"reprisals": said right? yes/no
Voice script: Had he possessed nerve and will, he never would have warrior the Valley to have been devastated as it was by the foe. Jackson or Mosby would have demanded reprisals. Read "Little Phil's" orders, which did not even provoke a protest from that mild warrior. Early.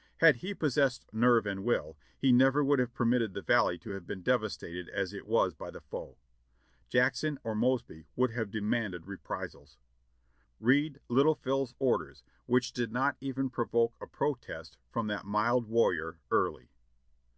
yes